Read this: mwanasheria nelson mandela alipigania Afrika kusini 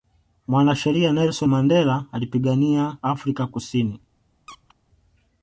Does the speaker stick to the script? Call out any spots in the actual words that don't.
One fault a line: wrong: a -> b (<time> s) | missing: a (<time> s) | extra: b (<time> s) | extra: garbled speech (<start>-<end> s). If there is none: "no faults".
no faults